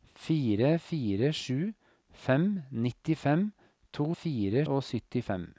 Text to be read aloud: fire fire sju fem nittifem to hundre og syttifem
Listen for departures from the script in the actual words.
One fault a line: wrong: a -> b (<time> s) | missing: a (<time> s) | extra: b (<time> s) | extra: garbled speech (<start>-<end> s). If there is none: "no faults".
wrong: hundre -> fire (4.1 s)